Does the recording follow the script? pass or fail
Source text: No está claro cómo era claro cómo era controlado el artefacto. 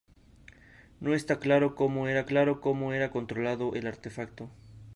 pass